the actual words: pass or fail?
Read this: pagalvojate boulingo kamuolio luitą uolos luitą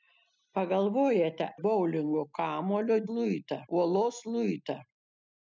pass